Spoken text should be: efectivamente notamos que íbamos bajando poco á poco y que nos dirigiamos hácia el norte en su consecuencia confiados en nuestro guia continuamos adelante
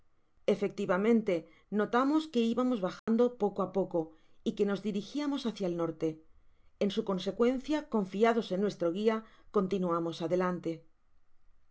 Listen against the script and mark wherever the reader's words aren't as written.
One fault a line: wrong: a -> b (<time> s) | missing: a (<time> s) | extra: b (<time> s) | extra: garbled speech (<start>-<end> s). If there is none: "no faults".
no faults